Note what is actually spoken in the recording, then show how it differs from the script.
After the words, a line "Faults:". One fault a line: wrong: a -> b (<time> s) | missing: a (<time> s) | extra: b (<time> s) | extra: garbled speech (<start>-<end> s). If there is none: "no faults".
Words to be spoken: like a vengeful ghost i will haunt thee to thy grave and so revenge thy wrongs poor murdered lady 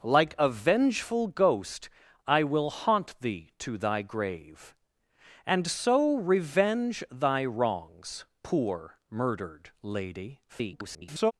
like a vengeful ghost i will haunt thee to thy grave and so revenge thy wrongs poor murdered lady [garbled]
Faults:
extra: garbled speech (10.5-11.3 s)